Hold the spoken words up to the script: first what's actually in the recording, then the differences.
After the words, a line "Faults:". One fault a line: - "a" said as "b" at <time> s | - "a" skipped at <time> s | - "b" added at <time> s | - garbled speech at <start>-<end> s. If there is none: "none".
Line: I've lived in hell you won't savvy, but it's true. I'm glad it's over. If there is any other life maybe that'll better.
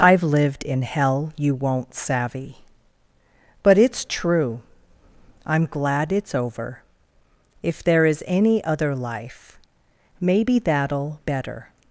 I've lived in hell you won't savvy, but it's true. I'm glad it's over. If there is any other life maybe that'll better.
Faults:
none